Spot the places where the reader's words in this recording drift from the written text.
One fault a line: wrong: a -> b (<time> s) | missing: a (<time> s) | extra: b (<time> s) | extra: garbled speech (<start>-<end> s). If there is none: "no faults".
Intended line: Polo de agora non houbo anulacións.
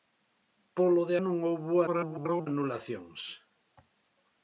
missing: agora (1.1 s)
extra: garbled speech (1.9-2.5 s)